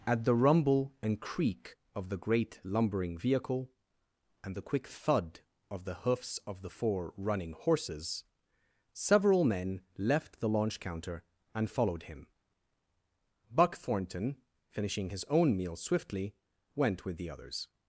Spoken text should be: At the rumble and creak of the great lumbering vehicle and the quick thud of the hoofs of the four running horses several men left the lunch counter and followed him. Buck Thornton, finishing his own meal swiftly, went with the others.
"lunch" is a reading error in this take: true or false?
true